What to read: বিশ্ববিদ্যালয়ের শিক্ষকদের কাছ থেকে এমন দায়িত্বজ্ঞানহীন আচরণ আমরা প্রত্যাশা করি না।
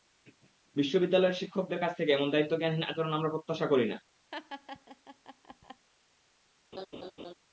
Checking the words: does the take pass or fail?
pass